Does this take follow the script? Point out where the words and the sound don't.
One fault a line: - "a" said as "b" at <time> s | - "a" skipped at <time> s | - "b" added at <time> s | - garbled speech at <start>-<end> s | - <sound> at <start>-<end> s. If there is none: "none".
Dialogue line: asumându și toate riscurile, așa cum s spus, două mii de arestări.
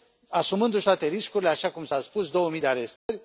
- "a" added at 1.9 s
- dropout at 3.0-3.1 s